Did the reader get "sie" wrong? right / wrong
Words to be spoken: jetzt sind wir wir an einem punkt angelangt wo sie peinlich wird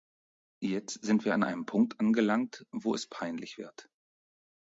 wrong